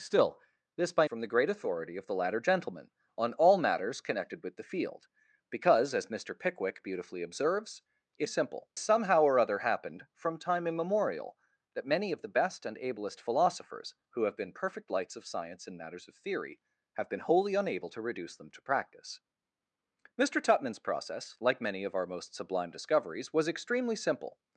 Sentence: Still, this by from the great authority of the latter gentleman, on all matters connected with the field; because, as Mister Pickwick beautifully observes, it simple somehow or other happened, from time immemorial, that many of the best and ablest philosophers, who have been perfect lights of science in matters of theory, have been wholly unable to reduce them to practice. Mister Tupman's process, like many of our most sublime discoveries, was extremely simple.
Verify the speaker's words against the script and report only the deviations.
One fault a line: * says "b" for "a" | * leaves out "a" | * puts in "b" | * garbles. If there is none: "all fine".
all fine